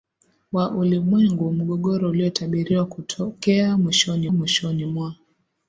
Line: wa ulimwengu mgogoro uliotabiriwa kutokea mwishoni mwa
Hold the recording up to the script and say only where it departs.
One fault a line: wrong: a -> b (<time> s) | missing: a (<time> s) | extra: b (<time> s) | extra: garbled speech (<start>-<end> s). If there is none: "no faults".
extra: mwishoni (4.3 s)